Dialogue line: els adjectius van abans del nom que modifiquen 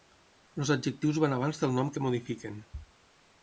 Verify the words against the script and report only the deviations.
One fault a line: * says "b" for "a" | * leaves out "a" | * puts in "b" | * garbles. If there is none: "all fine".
all fine